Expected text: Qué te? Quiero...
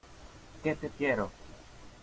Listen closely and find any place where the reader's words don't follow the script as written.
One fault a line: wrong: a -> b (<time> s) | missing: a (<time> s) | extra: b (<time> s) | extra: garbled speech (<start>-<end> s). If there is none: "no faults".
no faults